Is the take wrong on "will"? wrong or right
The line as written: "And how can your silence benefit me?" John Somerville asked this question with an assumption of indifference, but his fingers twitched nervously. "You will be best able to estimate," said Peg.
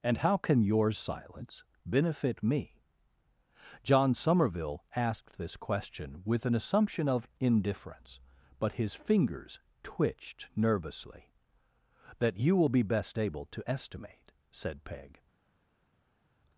right